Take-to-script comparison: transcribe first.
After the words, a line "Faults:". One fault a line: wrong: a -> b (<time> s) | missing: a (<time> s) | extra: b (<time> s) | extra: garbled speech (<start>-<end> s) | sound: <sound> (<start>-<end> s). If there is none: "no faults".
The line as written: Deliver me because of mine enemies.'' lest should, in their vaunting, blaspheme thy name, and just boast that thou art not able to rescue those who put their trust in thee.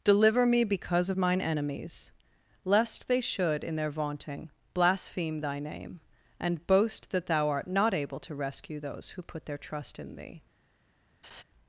Deliver me because of mine enemies.'' lest they should, in their vaunting, blaspheme thy name, and boast that thou art not able to rescue those who put their trust in thee.
Faults:
extra: they (3.1 s)
missing: just (6.7 s)
sound: laugh (11.2-11.4 s)